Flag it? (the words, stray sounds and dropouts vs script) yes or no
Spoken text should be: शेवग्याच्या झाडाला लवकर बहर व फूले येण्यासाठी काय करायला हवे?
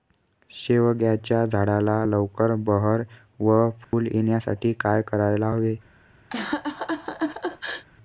yes